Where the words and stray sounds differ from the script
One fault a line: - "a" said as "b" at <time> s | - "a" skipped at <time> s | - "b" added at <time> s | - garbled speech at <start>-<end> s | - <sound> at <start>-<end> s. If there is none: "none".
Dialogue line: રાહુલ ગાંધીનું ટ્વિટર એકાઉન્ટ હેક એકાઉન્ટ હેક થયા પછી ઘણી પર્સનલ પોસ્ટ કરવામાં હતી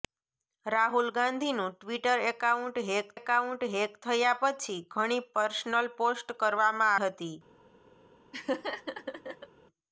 - laugh at 8.3-9.5 s